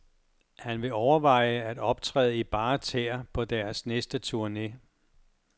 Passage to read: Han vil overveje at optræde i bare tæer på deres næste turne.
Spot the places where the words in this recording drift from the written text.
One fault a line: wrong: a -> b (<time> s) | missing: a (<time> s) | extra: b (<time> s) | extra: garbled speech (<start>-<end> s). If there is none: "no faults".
no faults